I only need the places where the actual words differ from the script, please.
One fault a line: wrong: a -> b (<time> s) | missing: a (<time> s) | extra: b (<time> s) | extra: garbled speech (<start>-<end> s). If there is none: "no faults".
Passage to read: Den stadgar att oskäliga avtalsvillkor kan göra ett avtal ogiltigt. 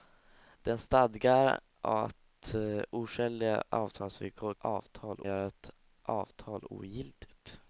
wrong: kan -> avtal (4.6 s)